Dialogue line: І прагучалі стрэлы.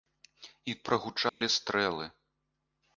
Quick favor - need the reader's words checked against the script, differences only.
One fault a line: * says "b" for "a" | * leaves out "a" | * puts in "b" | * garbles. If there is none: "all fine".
all fine